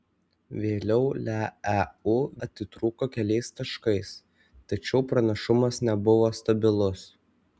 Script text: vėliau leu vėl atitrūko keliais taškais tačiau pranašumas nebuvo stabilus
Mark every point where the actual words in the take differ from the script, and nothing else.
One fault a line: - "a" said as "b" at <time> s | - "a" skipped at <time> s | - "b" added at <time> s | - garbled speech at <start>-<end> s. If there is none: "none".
- "vėl" skipped at 2.1 s